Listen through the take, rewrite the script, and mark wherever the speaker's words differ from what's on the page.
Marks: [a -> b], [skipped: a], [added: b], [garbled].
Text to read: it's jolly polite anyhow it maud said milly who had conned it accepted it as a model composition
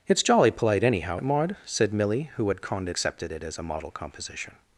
it's jolly polite anyhow it maud said milly who had conned it accepted it as a model composition